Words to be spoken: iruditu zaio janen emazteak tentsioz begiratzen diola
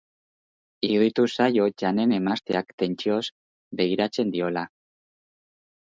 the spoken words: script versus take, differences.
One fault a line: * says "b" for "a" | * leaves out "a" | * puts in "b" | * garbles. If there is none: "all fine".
all fine